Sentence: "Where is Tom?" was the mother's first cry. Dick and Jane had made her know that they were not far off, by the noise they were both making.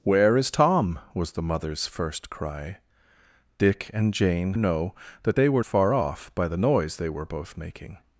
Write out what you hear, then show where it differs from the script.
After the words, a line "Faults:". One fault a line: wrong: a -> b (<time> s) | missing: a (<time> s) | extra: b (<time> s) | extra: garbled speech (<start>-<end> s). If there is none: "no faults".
"Where is Tom?" was the mother's first cry. Dick and Jane know that they were far off, by the noise they were both making.
Faults:
missing: had made her (4.5 s)
missing: not (5.6 s)